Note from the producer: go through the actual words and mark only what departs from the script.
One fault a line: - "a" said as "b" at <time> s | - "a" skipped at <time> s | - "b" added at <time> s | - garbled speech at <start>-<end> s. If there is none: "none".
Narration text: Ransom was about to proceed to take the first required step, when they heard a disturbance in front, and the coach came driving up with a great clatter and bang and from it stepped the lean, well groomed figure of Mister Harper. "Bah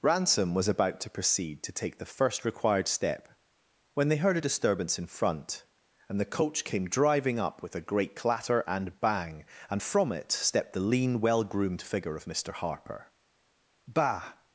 none